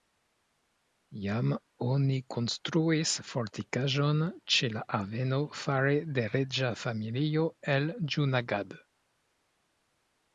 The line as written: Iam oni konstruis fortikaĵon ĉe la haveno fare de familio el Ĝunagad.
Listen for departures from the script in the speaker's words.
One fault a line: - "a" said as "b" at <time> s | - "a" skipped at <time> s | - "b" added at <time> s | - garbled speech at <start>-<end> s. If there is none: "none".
- "reĝa" added at 6.4 s